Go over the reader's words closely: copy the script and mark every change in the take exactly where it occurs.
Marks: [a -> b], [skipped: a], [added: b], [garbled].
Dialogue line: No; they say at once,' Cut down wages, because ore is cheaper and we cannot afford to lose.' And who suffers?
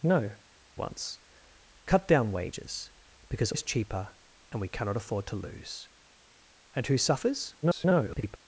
No; [skipped: they say at] once,' Cut down wages, because [skipped: ore] is cheaper and we cannot afford to lose.' And who suffers? [garbled]